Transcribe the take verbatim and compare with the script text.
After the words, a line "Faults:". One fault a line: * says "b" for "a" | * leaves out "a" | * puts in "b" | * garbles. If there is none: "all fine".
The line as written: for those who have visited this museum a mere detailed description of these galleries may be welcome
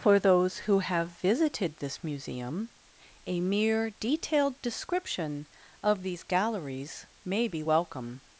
for those who have visited this museum a mere detailed description of these galleries may be welcome
Faults:
all fine